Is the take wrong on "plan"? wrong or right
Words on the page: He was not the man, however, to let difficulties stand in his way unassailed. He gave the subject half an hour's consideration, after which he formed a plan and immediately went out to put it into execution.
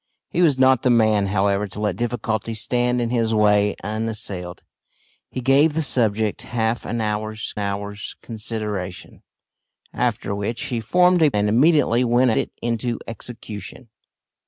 wrong